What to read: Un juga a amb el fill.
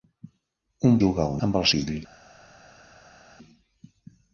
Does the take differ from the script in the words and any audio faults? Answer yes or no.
no